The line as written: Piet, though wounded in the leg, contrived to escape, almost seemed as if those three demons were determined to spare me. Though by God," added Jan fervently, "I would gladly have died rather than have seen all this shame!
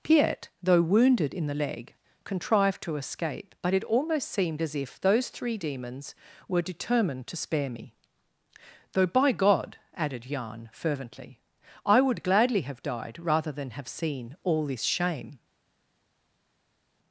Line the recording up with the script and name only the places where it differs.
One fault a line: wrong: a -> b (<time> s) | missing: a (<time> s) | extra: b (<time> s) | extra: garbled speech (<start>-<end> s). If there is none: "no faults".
extra: but it (3.6 s)